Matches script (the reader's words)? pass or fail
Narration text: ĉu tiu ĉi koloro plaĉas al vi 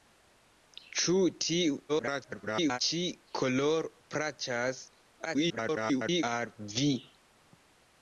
fail